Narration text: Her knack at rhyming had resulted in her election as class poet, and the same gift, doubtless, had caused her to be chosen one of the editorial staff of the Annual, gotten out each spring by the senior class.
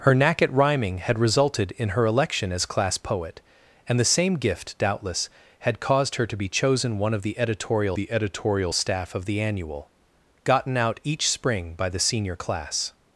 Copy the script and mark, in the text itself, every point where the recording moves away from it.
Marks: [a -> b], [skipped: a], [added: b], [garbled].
Her knack at rhyming had resulted in her election as class poet, and the same gift, doubtless, had caused her to be chosen one of the editorial [added: the editorial] staff of the Annual, gotten out each spring by the senior class.